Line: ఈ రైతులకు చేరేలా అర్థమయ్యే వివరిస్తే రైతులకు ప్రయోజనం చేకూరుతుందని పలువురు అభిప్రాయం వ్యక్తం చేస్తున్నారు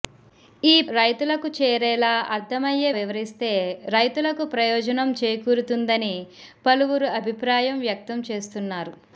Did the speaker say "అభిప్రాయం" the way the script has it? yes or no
yes